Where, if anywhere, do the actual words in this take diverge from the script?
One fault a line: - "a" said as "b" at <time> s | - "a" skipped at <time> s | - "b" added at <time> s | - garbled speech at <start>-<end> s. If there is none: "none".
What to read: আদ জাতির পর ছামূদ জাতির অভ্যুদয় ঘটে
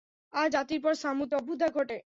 - "জাতির" skipped at 1.3 s